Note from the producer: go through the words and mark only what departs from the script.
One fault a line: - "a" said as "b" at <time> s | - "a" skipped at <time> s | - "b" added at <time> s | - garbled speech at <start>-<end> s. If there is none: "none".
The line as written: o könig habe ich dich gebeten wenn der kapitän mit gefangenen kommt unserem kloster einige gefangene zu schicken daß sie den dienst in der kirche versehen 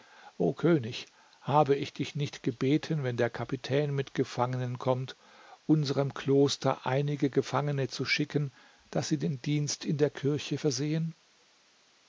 - "nicht" added at 2.1 s